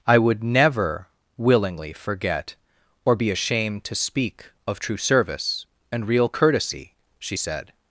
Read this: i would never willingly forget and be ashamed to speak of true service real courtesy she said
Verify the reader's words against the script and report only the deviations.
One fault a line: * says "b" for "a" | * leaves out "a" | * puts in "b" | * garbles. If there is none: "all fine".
* says "or" for "and"
* puts in "and"